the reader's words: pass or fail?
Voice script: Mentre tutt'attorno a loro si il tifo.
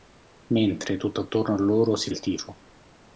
pass